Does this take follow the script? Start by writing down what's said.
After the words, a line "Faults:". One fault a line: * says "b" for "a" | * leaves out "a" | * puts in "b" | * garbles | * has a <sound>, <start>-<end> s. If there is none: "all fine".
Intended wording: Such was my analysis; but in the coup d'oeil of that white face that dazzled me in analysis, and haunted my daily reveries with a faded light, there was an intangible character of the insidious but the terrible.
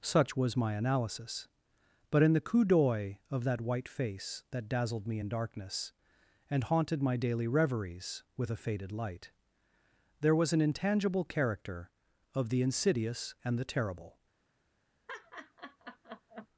Such was my analysis; but in the coup d'oeil of that white face that dazzled me in darkness, and haunted my daily reveries with a faded light, there was an intangible character of the insidious and the terrible.
Faults:
* says "darkness" for "analysis"
* says "and" for "but"
* has a laugh, 15.1-16.5 s